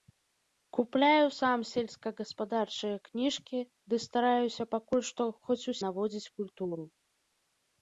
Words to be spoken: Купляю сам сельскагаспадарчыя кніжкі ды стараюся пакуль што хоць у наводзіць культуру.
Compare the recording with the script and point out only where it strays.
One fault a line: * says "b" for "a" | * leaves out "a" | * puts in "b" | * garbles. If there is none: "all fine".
all fine